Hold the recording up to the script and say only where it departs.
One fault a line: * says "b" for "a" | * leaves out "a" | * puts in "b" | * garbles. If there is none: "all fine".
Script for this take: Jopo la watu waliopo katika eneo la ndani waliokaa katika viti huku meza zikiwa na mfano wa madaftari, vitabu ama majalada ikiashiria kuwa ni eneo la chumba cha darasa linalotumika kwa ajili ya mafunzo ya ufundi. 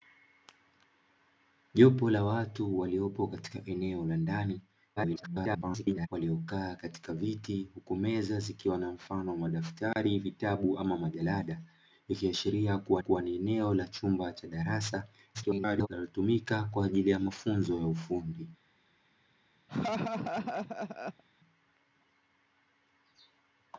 * garbles
* puts in "kuwa"
* garbles